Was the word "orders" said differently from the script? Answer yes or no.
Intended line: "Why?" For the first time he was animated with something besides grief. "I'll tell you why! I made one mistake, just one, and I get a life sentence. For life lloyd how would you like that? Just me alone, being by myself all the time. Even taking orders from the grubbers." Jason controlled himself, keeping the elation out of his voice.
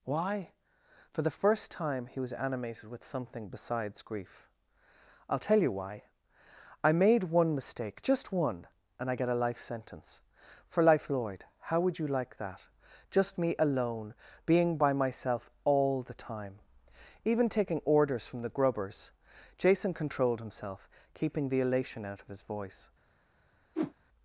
no